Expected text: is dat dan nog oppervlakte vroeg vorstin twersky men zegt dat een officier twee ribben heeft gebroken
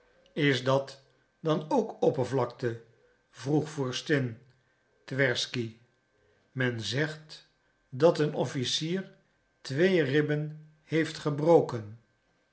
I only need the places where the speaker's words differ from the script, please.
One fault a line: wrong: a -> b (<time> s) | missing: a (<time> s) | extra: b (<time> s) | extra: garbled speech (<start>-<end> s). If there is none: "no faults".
wrong: nog -> ook (1.7 s)